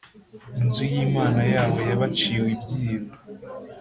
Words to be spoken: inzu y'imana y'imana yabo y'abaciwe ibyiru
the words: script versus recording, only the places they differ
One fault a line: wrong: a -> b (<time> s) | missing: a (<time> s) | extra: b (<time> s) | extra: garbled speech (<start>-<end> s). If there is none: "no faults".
missing: y'imana (1.4 s)